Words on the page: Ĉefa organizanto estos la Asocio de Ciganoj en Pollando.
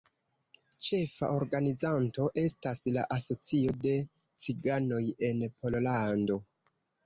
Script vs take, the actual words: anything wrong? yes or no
yes